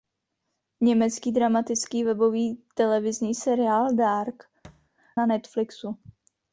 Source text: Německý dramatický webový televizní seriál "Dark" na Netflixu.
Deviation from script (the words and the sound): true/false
true